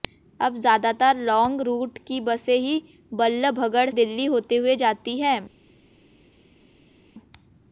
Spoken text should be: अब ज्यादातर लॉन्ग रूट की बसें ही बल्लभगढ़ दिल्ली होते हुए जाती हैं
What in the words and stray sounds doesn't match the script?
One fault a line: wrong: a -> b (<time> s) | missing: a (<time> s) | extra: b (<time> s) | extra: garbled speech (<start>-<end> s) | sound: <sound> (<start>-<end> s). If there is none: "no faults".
no faults